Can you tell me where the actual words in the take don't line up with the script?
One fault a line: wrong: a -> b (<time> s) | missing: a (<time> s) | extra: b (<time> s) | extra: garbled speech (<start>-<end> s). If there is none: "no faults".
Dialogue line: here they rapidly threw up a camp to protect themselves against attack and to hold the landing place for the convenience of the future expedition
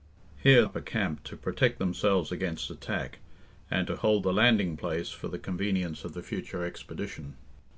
missing: they rapidly threw (0.7 s)